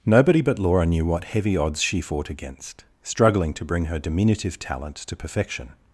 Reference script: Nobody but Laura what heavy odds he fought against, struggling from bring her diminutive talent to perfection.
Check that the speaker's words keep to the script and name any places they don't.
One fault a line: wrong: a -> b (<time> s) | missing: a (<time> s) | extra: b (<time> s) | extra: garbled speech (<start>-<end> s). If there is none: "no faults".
extra: knew (0.9 s)
wrong: he -> she (1.8 s)
wrong: from -> to (3.5 s)